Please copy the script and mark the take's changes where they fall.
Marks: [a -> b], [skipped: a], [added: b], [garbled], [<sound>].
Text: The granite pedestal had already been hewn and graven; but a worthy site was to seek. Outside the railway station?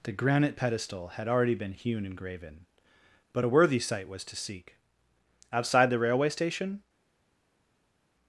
The granite pedestal had already been hewn and graven; but a worthy site was to seek. Outside the railway station?